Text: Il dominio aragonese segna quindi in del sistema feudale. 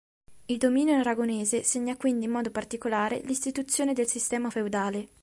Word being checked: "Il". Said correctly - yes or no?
yes